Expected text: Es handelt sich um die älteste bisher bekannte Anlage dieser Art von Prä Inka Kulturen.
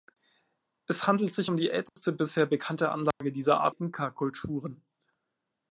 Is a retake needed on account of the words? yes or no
yes